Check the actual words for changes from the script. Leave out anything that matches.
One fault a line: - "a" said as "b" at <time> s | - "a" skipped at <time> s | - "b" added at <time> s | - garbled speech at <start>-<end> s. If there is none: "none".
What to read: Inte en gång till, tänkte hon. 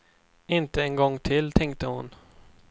none